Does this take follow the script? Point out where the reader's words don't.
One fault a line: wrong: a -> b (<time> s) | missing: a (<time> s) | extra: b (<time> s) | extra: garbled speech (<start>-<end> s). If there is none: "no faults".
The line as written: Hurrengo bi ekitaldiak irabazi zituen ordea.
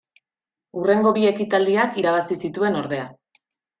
no faults